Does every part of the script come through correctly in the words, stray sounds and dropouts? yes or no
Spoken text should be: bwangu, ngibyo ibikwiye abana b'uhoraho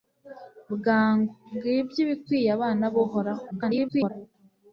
no